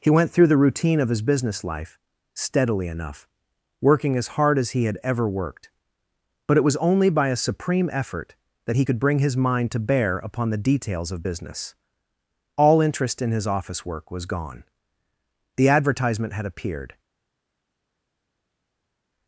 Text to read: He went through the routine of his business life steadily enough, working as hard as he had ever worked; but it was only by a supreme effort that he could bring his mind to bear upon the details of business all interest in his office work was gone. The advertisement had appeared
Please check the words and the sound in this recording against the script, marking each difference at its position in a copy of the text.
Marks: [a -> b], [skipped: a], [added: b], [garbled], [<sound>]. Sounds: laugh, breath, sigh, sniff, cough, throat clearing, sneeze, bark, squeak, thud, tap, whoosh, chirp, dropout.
He went through the routine of his business life steadily enough, working as hard as he had ever worked; but it was only by a supreme effort that he could bring his mind to bear upon the details of business all interest in his office work was gone. The advertisement had appeared